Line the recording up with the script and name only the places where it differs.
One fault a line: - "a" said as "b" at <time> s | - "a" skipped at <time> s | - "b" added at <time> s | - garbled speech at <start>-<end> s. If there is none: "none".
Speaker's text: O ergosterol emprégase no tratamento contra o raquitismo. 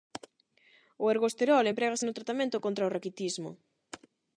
none